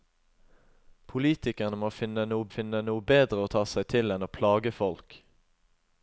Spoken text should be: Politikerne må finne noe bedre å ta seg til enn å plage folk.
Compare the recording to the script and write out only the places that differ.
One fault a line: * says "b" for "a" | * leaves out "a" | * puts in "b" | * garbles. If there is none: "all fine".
* puts in "finne noe"